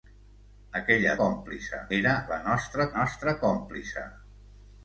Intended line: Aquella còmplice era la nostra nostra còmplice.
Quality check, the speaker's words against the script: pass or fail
pass